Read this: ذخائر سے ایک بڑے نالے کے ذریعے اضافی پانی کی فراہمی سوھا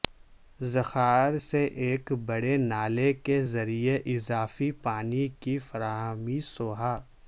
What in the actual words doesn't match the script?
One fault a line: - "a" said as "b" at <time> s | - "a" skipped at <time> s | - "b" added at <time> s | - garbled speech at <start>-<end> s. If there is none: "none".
none